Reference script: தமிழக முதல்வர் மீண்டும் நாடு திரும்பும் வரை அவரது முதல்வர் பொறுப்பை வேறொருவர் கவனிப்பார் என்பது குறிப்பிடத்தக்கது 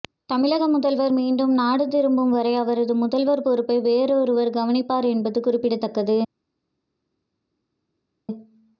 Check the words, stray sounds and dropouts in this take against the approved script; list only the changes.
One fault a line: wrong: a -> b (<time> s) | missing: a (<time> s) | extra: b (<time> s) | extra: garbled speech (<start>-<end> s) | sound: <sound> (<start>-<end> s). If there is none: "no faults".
no faults